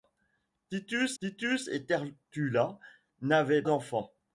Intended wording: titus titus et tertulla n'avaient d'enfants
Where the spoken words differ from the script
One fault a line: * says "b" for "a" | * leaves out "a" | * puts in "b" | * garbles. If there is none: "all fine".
all fine